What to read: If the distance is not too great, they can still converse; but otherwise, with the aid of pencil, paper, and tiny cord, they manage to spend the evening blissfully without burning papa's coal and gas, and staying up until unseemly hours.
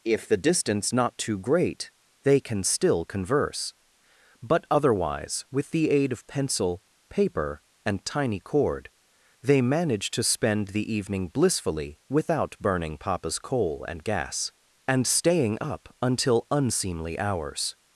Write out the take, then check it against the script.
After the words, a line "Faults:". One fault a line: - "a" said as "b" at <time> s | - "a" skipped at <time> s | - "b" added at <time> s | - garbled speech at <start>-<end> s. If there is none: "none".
If the distance not too great, they can still converse; but otherwise, with the aid of pencil, paper, and tiny cord, they manage to spend the evening blissfully without burning papa's coal and gas, and staying up until unseemly hours.
Faults:
- "is" skipped at 0.9 s